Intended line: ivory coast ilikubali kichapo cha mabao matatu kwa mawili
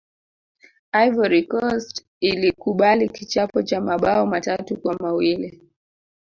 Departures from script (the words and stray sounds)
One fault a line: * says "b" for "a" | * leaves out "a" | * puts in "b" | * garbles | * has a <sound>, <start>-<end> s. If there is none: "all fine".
all fine